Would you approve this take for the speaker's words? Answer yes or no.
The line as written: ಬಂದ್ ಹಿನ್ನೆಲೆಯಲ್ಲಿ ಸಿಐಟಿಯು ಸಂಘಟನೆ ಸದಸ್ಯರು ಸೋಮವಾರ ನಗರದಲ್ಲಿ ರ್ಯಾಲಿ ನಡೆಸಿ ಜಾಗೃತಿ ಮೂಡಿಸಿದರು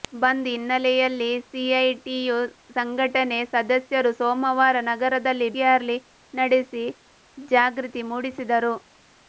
yes